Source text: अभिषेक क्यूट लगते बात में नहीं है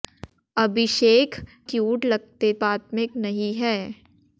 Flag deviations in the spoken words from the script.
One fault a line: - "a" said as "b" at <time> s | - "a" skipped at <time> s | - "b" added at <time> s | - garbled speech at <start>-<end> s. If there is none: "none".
none